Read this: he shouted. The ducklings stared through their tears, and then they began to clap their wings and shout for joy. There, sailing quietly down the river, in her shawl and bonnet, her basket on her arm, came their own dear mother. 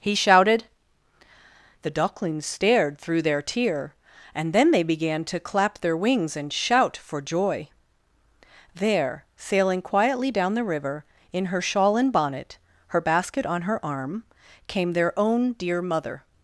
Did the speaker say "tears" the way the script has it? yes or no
no